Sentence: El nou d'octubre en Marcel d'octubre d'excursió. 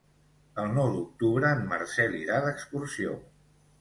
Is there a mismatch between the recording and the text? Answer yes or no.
yes